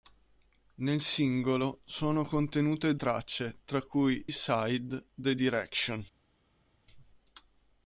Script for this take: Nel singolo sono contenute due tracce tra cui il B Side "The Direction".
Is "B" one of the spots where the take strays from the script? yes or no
yes